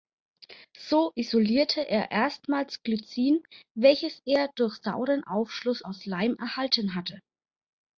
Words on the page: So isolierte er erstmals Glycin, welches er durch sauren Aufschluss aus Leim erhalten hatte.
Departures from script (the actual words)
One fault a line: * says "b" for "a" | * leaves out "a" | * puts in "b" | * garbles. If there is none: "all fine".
all fine